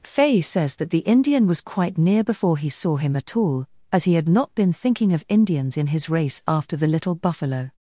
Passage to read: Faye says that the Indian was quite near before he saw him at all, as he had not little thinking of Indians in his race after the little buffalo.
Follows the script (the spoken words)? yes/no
no